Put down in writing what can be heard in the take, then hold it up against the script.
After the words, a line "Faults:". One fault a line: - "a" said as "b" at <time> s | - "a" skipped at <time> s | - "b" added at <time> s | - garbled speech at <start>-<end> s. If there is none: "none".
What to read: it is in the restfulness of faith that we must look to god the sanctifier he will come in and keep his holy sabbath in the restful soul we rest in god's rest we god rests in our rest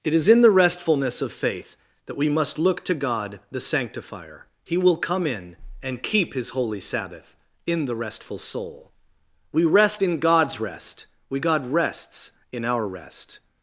it is in the restfulness of faith that we must look to god the sanctifier he will come in and keep his holy sabbath in the restful soul we rest in god's rest we god rests in our rest
Faults:
none